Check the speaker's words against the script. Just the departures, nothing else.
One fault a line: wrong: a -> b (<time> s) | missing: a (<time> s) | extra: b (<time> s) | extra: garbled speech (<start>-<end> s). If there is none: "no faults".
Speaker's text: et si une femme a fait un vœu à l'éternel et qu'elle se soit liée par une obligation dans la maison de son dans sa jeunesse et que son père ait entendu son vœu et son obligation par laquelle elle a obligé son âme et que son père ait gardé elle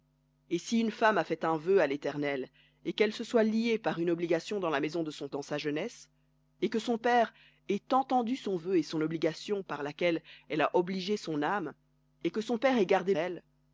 no faults